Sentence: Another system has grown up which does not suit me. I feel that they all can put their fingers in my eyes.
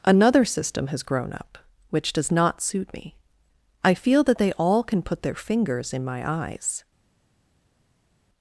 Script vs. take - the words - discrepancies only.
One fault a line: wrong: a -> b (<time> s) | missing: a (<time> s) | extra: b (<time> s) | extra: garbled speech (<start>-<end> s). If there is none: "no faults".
no faults